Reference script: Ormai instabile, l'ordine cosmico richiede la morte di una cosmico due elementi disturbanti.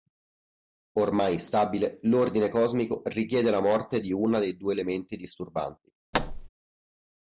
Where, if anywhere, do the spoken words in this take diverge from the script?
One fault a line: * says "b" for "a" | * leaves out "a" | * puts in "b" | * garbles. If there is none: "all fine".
* says "dei" for "cosmico"